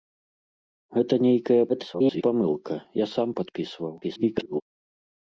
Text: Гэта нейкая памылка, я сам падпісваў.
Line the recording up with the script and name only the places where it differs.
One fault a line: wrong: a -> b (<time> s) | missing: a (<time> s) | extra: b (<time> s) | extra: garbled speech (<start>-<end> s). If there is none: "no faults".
extra: garbled speech (1.7-2.2 s)
extra: garbled speech (4.0-4.6 s)